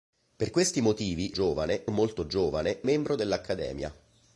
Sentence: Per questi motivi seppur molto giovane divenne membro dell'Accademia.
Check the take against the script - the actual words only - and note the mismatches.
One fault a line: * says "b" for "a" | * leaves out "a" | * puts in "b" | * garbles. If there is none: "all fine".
* says "giovane" for "seppur"
* leaves out "divenne"